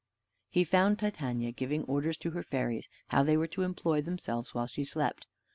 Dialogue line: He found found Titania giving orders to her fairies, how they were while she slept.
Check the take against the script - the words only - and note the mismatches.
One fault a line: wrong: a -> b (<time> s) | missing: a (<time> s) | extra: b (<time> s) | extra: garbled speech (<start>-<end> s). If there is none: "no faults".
missing: found (1.0 s)
extra: to employ themselves (3.5 s)